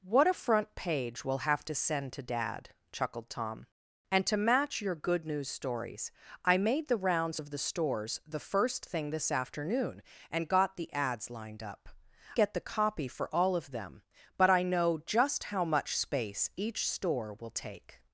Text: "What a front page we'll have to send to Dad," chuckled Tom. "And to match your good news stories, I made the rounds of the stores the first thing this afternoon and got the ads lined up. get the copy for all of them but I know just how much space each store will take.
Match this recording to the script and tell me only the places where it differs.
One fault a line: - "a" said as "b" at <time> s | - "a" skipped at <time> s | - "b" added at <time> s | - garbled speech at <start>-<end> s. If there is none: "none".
none